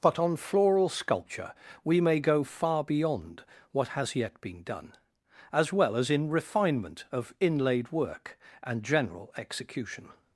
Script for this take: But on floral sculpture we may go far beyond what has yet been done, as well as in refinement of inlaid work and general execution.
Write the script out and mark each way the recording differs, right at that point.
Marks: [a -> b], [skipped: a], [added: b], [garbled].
But on floral sculpture we may go far beyond what has yet been done, as well as in refinement of inlaid work and general execution.